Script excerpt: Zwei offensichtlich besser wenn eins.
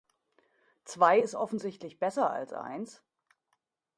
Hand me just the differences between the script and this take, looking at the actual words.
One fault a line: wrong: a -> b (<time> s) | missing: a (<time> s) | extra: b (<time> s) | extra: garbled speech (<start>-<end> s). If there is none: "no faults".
extra: ist (1.1 s)
wrong: wenn -> als (2.3 s)